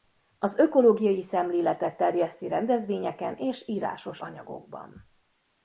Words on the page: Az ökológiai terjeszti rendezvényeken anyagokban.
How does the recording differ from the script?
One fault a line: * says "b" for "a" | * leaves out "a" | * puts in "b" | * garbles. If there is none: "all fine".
* puts in "szemléletet"
* puts in "és írásos"